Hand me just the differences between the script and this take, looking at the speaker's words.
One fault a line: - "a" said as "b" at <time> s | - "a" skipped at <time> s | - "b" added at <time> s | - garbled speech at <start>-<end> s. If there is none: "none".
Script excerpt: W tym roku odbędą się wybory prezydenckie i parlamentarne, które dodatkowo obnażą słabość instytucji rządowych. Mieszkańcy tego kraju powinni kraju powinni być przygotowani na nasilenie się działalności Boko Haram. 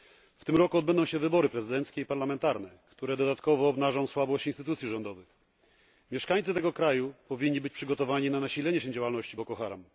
- "kraju powinni" skipped at 7.6 s